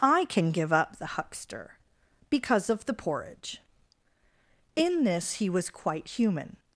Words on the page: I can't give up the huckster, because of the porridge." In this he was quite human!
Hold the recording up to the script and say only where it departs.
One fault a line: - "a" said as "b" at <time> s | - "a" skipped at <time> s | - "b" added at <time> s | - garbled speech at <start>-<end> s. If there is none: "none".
- "can't" said as "can" at 0.2 s